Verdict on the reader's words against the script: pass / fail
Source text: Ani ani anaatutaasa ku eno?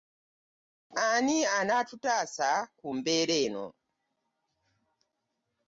fail